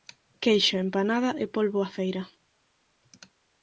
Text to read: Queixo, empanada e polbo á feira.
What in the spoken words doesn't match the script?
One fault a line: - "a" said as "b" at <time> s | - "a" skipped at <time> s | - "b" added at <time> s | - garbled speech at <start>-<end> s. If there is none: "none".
none